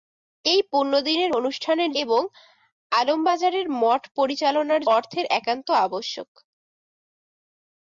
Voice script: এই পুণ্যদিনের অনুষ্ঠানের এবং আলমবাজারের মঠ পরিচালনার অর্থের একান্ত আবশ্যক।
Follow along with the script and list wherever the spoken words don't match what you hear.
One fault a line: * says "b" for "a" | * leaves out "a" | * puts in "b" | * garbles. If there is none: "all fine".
all fine